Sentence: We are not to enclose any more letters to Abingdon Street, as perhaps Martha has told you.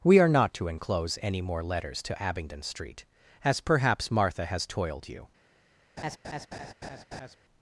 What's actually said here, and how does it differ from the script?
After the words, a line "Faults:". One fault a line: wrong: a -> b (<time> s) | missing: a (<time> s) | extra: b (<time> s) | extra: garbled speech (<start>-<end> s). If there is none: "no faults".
We are not to enclose any more letters to Abingdon Street, as perhaps Martha has toiled you.
Faults:
wrong: told -> toiled (4.7 s)